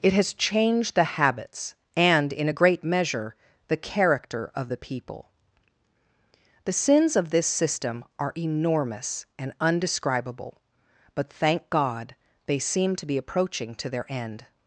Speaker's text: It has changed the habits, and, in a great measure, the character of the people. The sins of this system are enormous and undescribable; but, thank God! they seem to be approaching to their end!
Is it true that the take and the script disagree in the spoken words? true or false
false